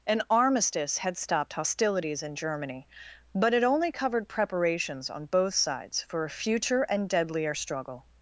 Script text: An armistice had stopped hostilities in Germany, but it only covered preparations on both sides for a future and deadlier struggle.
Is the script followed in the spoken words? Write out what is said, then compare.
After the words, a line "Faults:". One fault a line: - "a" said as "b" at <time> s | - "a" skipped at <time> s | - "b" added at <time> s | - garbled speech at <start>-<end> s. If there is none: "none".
An armistice had stopped hostilities in Germany, but it only covered preparations on both sides for a future and deadlier struggle.
Faults:
none